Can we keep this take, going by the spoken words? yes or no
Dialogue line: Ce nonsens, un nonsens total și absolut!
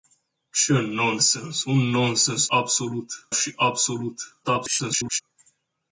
no